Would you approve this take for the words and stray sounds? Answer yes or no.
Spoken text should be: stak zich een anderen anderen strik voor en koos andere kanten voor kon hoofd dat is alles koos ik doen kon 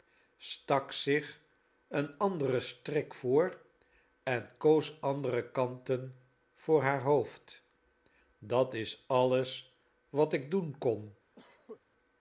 no